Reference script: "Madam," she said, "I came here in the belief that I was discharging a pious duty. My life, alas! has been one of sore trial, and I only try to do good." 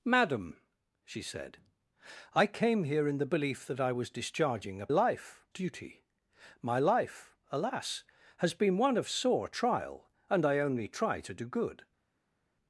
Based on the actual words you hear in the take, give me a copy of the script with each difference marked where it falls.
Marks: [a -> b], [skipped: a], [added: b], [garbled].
"Madam," she said, "I came here in the belief that I was discharging a [pious -> life] duty. My life, alas! has been one of sore trial, and I only try to do good."